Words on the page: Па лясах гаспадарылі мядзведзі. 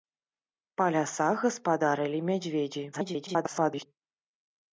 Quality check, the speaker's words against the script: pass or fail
fail